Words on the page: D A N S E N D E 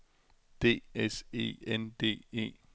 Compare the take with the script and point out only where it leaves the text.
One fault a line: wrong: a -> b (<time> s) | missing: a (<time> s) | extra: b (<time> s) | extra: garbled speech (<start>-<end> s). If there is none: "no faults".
missing: A N (0.8 s)